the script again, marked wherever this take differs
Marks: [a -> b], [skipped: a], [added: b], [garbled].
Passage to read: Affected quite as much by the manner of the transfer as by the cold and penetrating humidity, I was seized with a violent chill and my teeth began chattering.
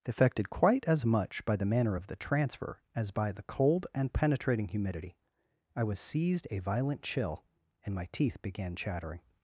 Affected quite as much by the manner of the transfer as by the cold and penetrating humidity, I was seized [skipped: with] a violent chill and my teeth began chattering.